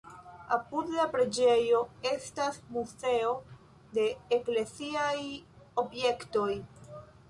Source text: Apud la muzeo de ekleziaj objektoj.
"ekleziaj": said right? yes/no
yes